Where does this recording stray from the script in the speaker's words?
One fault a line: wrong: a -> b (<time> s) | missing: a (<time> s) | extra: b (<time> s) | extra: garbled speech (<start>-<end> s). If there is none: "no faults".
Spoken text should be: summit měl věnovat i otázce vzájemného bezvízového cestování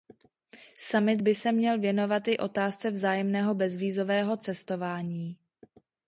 extra: by se (1.2 s)